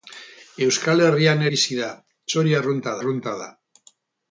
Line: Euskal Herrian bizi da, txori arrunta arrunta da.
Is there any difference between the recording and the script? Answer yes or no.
no